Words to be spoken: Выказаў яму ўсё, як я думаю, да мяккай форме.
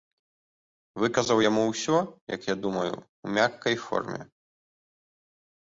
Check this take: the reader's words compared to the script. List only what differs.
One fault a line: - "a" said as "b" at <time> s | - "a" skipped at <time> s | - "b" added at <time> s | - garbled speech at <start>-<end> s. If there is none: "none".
- "да" said as "у" at 3.0 s